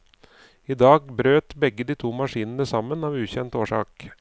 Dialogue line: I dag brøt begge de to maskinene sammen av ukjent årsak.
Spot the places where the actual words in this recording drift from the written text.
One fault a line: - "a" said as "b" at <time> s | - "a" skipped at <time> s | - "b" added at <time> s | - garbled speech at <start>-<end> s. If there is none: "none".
none